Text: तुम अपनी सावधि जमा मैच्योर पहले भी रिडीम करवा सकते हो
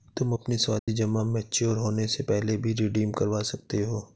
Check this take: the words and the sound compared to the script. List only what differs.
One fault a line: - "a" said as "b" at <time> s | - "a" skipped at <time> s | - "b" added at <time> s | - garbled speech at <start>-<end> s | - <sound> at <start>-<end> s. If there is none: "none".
- dropout at 0.8-0.9 s
- "होने से" added at 1.8 s